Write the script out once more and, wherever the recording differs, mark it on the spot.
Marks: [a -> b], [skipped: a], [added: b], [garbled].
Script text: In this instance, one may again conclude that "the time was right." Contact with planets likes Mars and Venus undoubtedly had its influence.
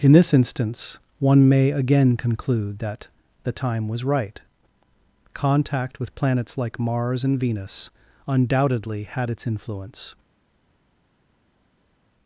In this instance, one may again conclude that "the time was right." Contact with planets [likes -> like] Mars and Venus undoubtedly had its influence.